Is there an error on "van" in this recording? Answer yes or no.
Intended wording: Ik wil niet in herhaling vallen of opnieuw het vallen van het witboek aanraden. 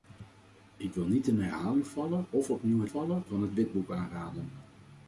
no